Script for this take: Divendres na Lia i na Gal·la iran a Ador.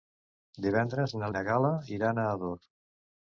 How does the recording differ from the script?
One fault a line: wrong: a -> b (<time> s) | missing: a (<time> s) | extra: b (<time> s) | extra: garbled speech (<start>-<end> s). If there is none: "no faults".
missing: Lia (1.3 s)